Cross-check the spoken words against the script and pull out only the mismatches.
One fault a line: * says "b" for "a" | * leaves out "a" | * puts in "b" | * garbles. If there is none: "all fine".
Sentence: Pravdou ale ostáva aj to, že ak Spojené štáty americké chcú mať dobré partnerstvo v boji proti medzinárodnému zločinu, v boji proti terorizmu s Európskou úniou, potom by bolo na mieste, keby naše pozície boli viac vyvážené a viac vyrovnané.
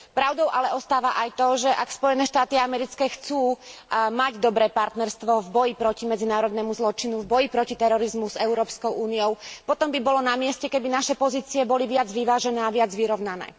all fine